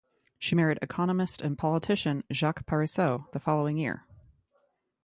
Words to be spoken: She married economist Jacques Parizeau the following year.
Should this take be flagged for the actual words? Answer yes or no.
yes